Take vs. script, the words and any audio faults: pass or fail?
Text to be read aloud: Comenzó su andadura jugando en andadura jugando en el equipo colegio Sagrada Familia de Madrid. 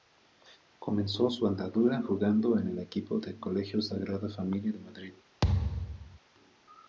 fail